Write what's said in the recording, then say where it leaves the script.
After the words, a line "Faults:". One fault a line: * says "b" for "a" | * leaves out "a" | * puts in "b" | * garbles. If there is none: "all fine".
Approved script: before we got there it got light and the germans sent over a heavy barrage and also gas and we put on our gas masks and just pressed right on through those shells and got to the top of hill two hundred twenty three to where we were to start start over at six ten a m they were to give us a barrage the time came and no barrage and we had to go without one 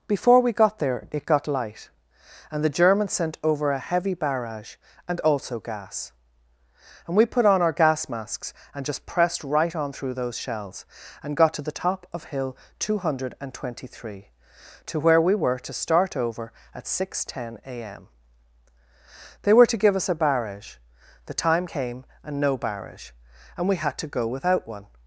before we got there it got light and the germans sent over a heavy barrage and also gas and we put on our gas masks and just pressed right on through those shells and got to the top of hill two hundred twenty three to where we were to start over at six ten a m they were to give us a barrage the time came and no barrage and we had to go without one
Faults:
* leaves out "start"